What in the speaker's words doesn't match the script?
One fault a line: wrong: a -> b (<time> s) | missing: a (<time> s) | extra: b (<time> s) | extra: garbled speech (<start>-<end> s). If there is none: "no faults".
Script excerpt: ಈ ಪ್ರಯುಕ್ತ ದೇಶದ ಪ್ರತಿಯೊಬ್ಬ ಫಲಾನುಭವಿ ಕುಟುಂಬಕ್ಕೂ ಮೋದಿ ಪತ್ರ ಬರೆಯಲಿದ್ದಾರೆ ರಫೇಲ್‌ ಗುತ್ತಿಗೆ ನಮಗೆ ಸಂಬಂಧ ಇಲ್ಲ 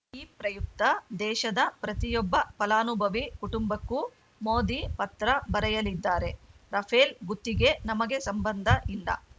no faults